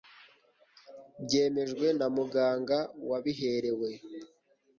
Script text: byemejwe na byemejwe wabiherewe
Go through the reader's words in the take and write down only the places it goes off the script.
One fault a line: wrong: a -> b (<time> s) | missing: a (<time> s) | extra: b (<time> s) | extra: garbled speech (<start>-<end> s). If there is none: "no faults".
wrong: byemejwe -> muganga (2.1 s)